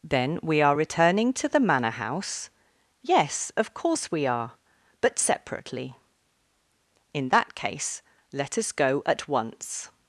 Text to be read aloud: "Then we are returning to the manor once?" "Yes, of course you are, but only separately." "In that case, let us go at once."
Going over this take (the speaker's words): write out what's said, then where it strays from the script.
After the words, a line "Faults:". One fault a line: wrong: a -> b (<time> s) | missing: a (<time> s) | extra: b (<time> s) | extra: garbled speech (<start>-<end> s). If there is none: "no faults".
"Then we are returning to the manor house?" "Yes, of course we are, but separately." "In that case, let us go at once."
Faults:
wrong: once -> house (1.9 s)
wrong: you -> we (4.1 s)
missing: only (5.2 s)